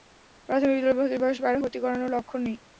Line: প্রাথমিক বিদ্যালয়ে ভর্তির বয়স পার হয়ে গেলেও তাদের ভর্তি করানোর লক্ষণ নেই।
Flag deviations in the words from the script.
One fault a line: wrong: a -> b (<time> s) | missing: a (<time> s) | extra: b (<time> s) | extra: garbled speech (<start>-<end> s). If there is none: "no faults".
missing: হয়ে গেলেও তাদের (1.6 s)